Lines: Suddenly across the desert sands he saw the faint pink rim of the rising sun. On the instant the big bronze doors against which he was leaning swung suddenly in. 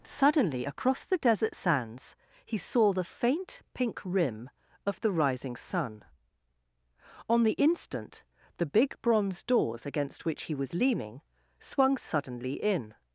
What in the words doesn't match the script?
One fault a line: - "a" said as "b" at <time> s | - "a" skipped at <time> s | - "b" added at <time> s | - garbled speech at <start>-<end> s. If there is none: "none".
none